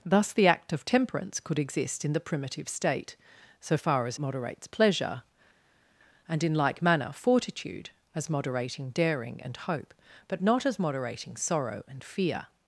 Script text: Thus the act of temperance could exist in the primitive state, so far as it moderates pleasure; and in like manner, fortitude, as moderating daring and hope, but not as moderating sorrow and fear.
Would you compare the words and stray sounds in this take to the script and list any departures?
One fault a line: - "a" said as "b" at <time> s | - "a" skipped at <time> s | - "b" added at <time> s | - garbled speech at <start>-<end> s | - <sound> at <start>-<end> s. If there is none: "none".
- "it" skipped at 4.2 s